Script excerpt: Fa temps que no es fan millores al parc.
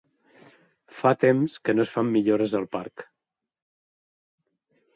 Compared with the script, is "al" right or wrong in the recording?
right